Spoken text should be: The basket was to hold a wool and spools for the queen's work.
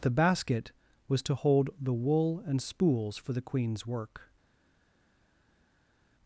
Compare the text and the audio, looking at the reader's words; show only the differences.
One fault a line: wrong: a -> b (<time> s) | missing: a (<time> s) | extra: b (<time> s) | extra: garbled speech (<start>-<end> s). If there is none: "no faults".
wrong: a -> the (1.8 s)